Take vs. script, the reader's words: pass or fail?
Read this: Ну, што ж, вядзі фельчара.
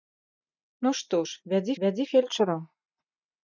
fail